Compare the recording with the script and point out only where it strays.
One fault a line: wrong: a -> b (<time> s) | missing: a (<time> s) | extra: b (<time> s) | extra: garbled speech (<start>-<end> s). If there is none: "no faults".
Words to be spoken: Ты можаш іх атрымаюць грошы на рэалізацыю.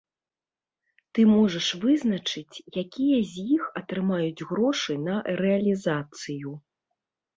extra: вызначыць якія з (1.8 s)